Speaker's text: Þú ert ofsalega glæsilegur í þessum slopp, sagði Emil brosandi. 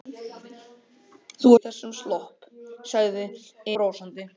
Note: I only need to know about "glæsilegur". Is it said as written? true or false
false